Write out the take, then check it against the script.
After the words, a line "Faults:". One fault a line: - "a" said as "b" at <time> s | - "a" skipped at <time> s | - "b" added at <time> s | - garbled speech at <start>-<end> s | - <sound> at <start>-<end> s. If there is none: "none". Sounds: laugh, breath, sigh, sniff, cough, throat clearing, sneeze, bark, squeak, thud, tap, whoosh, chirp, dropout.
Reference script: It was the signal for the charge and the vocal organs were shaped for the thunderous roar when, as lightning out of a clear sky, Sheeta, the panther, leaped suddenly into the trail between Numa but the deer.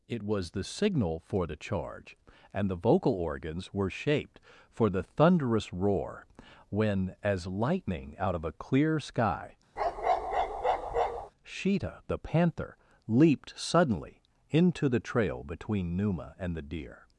It was the signal for the charge and the vocal organs were shaped for the thunderous roar when, as lightning out of a clear sky, Sheeta, the panther, leaped suddenly into the trail between Numa and the deer.
Faults:
- bark at 9.8-11.3 s
- "but" said as "and" at 16.4 s